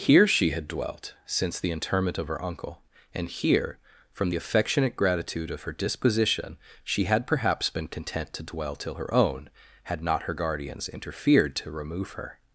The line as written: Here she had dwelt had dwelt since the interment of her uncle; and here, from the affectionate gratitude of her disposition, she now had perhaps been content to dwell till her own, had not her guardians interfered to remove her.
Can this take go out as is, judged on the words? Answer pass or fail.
fail